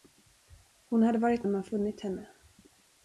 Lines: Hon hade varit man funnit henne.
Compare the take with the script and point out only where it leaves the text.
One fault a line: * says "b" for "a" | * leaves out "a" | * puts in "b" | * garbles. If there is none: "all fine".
all fine